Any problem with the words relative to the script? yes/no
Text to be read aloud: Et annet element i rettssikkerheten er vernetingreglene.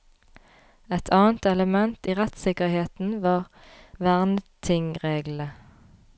yes